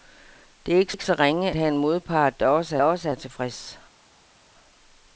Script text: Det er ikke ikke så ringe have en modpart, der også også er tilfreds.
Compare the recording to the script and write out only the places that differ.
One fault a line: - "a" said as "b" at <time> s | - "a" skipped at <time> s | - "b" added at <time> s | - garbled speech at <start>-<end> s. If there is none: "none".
none